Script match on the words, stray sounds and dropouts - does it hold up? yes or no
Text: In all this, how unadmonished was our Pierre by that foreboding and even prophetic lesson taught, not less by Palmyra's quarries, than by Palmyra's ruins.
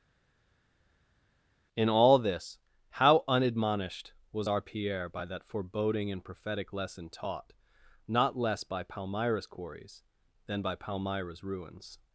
no